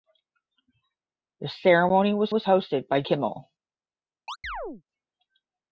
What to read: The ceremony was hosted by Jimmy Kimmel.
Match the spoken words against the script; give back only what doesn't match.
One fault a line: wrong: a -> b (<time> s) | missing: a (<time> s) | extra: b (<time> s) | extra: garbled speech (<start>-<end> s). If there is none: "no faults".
extra: was (2.3 s)
missing: Jimmy (3.0 s)